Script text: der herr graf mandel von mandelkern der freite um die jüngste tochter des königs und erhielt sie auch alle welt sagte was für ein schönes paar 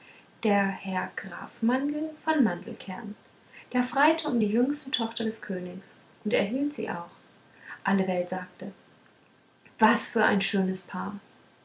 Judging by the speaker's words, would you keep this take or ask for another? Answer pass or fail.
pass